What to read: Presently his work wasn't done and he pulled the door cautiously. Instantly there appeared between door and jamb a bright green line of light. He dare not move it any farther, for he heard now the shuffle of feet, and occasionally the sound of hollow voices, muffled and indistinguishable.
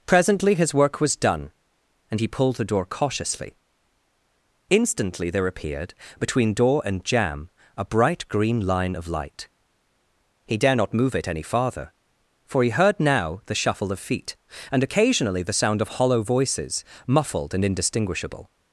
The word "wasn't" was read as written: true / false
false